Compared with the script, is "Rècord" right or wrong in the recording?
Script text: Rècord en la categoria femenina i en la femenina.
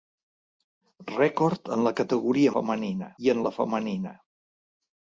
right